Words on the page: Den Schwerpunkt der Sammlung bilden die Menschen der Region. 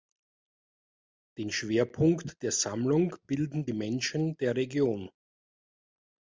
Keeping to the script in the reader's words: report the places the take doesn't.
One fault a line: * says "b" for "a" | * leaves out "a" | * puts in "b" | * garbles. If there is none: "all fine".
all fine